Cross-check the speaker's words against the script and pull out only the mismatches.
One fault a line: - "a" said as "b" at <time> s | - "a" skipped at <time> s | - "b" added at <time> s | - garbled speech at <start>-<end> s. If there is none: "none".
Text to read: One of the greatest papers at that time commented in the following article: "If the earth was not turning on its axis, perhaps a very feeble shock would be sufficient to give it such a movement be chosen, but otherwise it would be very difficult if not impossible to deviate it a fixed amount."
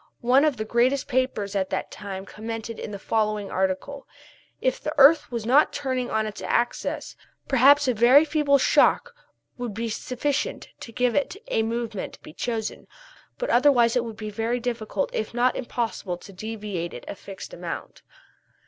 none